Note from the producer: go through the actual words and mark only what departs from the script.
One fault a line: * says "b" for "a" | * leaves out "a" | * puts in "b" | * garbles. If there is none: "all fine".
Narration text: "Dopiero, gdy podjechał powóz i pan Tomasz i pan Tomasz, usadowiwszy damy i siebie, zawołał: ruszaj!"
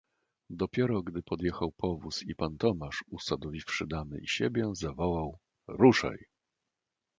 * leaves out "i pan Tomasz"